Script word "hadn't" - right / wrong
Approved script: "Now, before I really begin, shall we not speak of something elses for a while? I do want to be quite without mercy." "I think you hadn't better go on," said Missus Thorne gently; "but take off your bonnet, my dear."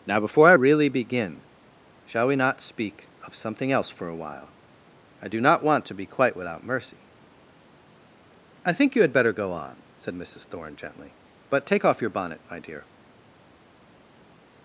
wrong